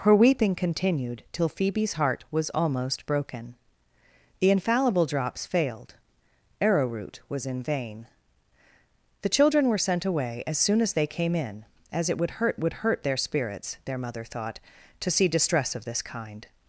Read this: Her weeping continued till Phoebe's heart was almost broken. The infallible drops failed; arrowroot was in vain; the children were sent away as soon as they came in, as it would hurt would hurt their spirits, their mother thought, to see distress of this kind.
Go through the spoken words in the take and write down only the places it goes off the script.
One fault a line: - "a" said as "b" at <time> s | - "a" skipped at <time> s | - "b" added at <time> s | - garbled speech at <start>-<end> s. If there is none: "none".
none